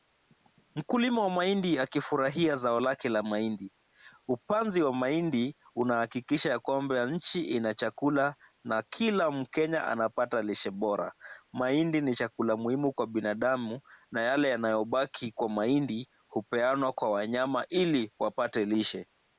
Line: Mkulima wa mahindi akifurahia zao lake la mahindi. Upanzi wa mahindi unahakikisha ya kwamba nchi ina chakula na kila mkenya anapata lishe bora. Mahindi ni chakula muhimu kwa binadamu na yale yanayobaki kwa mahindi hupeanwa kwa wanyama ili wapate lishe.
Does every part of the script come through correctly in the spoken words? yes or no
yes